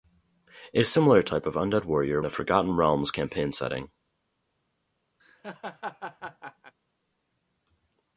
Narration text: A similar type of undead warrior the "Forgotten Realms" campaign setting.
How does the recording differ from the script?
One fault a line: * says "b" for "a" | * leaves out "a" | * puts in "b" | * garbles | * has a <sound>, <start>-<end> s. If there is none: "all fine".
* has a laugh, 5.2-6.7 s